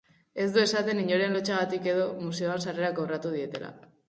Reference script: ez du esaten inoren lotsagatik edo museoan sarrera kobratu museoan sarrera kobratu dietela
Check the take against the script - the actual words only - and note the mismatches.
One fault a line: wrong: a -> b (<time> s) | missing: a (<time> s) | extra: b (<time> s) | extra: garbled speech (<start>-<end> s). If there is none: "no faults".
missing: museoan sarrera kobratu (3.3 s)